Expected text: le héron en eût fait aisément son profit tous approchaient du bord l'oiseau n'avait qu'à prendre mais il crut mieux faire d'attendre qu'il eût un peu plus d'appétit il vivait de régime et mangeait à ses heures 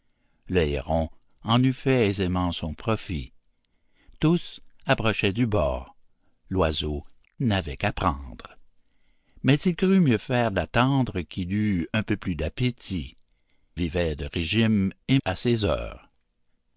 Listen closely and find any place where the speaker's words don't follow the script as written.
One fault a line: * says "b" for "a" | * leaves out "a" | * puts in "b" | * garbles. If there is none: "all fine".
* leaves out "il"
* leaves out "mangeait"